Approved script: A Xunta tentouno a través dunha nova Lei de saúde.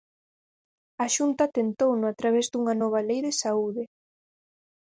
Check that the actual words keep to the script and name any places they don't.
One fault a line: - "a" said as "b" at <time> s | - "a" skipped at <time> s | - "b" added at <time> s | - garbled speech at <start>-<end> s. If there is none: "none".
none